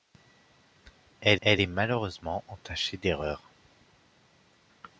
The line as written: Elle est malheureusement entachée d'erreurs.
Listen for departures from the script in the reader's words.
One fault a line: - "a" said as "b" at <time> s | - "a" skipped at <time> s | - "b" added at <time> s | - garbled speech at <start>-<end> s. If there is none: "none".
- "elle" added at 1.4 s